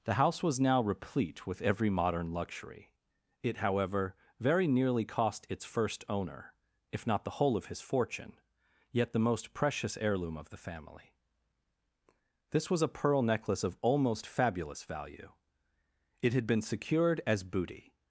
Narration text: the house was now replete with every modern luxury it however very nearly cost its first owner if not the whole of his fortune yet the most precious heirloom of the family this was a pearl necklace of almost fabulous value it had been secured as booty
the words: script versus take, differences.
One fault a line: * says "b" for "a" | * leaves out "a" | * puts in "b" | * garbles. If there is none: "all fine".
all fine